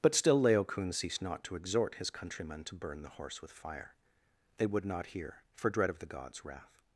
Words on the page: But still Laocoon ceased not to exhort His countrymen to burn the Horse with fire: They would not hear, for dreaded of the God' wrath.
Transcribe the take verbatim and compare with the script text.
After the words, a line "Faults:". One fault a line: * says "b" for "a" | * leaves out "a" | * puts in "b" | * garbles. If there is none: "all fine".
But still Laocoon ceased not to exhort His countrymen to burn the Horse with fire: They would not hear, for dread of the Gods' wrath.
Faults:
* says "dread" for "dreaded"
* says "Gods" for "God"